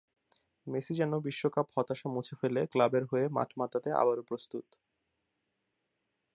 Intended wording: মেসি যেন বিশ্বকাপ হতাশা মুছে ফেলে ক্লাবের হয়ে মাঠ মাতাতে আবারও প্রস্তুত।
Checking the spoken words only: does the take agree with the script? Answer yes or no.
yes